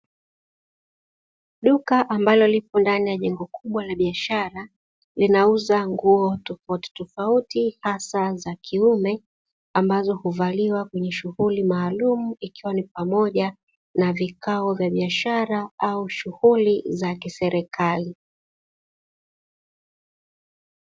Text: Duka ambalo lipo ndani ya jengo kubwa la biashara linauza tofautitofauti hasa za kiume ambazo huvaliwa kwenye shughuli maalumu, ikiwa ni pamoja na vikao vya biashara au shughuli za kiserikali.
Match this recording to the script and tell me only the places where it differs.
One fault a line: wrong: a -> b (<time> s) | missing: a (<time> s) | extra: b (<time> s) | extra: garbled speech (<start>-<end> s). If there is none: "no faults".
extra: nguo (5.9 s)